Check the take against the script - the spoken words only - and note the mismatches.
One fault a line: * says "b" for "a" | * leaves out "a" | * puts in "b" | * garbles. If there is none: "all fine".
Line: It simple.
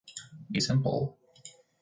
all fine